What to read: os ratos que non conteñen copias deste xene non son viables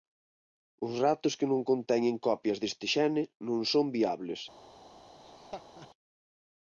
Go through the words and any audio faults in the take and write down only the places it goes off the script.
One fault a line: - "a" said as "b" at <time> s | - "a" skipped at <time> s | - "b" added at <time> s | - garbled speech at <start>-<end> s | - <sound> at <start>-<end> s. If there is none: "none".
- laugh at 5.2-5.9 s